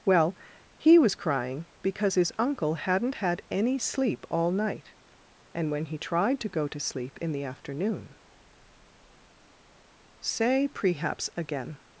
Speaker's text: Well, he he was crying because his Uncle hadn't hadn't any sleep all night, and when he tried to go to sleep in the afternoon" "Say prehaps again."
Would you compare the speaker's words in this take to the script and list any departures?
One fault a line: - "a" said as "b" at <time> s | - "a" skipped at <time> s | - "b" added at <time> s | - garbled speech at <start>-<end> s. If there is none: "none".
- "he" skipped at 1.0 s
- "hadn't" said as "had" at 3.1 s